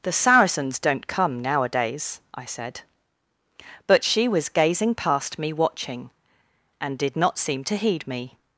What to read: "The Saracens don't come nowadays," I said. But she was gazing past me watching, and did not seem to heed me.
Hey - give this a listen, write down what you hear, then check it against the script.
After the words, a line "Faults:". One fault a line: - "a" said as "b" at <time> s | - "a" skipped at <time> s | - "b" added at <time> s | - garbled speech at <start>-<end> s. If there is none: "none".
"The Saracens don't come nowadays," I said. But she was gazing past me watching, and did not seem to heed me.
Faults:
none